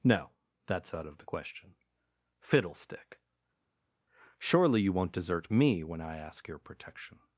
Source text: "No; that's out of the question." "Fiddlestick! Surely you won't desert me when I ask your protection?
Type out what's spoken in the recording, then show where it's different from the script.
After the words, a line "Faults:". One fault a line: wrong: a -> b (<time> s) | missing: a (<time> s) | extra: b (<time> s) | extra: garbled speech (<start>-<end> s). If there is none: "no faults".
"No; that's out of the question." "Fiddlestick! Surely you won't desert me when I ask your protection?
Faults:
no faults